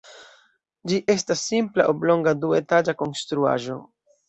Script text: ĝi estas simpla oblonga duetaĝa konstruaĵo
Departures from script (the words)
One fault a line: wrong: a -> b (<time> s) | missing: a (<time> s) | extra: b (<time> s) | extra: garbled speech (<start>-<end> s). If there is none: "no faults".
no faults